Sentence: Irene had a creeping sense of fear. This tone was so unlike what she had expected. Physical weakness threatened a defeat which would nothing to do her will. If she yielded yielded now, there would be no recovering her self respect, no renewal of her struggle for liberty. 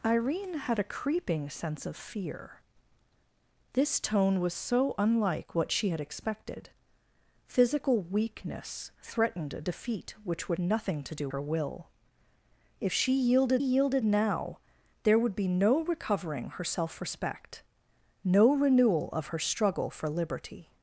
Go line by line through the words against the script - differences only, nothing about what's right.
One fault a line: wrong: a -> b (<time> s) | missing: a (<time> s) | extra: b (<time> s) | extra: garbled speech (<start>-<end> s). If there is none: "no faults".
no faults